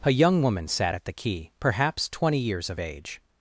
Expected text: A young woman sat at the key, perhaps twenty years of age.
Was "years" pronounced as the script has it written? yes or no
yes